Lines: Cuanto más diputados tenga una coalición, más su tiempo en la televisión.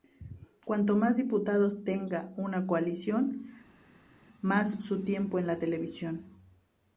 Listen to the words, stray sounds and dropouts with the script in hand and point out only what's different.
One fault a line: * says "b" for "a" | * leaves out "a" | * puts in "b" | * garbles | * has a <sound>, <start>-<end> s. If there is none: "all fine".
all fine